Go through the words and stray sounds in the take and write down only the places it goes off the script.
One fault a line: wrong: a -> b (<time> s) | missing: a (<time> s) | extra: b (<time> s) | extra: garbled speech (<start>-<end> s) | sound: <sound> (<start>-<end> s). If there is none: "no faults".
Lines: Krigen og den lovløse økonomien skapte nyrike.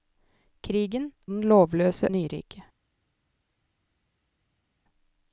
missing: og (1.1 s)
missing: økonomien skapte (2.1 s)